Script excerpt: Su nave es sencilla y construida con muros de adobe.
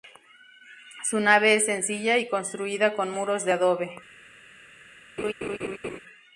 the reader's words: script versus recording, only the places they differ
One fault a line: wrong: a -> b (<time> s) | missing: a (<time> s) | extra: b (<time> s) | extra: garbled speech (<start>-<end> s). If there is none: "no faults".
no faults